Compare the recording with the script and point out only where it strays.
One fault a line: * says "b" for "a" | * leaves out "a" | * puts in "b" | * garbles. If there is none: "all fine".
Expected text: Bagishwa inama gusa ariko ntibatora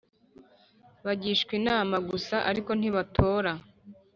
all fine